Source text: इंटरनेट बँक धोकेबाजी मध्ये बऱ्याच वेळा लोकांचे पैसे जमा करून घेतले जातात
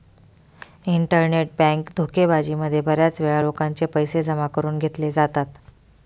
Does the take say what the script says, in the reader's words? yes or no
yes